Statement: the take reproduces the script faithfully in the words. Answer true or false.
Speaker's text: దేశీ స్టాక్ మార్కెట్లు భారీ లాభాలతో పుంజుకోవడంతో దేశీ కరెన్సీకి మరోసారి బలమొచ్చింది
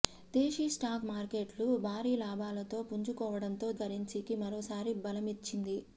false